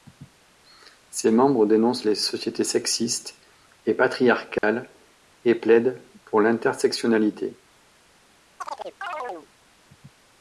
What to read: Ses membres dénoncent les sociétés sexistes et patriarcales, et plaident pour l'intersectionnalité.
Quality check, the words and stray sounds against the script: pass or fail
fail